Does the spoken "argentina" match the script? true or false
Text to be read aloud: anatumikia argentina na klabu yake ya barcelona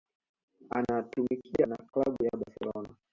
false